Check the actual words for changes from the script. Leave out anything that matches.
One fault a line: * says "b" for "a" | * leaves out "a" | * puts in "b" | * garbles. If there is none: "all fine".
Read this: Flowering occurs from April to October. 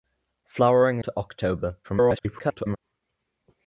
* leaves out "occurs from April"
* garbles